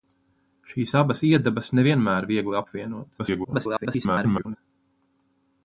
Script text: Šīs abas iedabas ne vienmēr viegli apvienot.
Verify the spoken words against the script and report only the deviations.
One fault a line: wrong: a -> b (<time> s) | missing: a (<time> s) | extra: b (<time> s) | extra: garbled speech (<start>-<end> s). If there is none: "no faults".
extra: garbled speech (3.2-4.6 s)